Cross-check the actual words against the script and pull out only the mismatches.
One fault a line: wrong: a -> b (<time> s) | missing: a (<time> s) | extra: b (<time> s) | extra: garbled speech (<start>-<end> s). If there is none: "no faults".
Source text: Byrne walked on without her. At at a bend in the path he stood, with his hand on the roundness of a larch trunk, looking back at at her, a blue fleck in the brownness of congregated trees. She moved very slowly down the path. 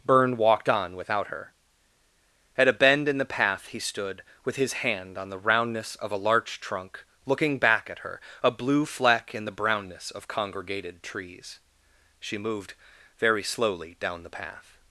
missing: at (2.7 s)
missing: at (8.0 s)